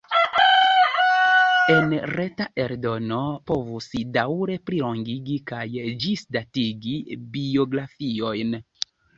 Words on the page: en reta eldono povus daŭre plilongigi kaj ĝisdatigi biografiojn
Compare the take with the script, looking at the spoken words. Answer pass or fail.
pass